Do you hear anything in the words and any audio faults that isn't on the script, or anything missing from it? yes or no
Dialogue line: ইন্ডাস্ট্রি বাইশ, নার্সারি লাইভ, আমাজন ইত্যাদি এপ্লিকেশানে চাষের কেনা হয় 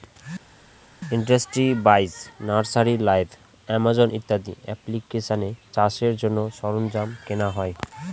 yes